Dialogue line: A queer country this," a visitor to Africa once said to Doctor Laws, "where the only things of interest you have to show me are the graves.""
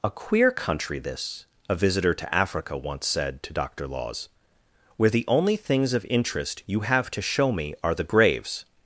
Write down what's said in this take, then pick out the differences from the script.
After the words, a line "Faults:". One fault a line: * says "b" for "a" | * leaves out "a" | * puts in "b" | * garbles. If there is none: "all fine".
A queer country this," a visitor to Africa once said to Doctor Laws, "where the only things of interest you have to show me are the graves.""
Faults:
all fine